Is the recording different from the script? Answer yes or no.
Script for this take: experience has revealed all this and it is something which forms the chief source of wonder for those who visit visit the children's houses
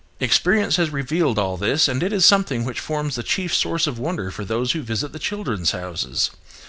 yes